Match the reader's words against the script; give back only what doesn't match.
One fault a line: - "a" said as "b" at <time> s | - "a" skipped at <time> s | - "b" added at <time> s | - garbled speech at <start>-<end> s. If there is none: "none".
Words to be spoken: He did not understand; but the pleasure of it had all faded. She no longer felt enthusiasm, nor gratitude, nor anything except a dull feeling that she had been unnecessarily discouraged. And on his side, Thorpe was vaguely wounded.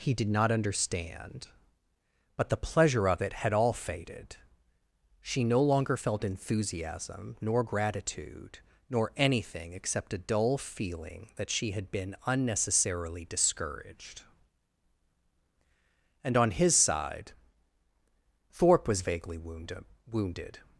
- "wounded" added at 20.1 s